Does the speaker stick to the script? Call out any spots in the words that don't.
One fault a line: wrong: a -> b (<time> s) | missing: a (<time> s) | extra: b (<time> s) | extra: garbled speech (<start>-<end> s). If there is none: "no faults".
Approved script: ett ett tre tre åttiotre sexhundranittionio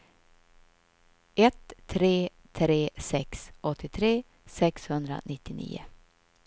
wrong: ett -> tre (1.9 s)
wrong: tre -> sex (3.0 s)